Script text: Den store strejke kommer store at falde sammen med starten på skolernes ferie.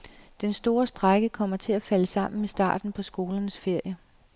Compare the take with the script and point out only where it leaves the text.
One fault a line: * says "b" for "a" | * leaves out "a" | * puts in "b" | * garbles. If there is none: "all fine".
* says "til" for "store"